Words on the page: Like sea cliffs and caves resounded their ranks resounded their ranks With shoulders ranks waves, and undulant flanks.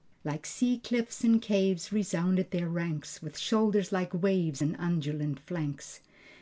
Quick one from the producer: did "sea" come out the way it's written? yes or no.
yes